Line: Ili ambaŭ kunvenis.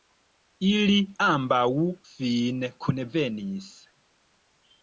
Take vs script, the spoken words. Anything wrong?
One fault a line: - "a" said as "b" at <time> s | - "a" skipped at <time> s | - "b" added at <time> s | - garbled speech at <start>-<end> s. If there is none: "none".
- "fine" added at 2.1 s